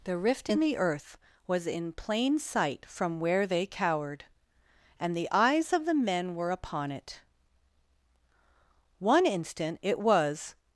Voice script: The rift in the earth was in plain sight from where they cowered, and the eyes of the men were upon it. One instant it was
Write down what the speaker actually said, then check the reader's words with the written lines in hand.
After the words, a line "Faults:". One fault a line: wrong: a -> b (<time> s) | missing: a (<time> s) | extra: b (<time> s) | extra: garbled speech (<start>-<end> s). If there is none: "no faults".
The rift in the earth was in plain sight from where they cowered, and the eyes of the men were upon it. One instant it was
Faults:
no faults